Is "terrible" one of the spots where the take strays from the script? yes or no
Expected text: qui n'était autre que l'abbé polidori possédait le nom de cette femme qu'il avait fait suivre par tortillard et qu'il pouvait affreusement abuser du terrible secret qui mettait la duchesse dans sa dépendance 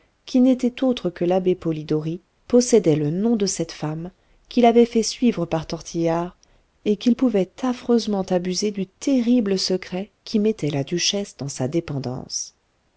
no